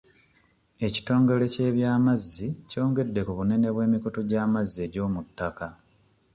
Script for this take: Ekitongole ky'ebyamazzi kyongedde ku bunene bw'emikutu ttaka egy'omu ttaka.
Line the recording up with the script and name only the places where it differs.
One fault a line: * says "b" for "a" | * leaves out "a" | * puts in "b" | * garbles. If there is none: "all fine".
* says "gy'amazzi" for "ttaka"